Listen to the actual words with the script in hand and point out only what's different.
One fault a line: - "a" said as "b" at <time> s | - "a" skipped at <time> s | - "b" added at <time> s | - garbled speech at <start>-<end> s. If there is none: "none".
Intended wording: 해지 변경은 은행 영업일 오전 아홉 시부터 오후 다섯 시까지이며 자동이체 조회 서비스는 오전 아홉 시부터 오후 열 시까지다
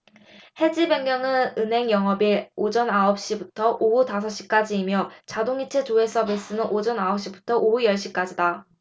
none